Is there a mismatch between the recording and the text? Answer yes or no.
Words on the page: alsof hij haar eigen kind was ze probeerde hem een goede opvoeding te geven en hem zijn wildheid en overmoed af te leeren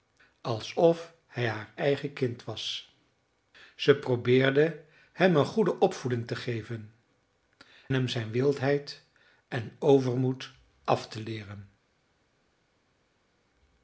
yes